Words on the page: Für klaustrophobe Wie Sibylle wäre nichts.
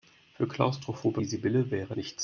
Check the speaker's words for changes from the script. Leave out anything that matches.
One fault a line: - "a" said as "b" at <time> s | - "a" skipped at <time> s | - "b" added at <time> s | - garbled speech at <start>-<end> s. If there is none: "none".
none